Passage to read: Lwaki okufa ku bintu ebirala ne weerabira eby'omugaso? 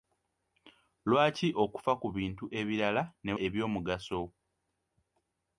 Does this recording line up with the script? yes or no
no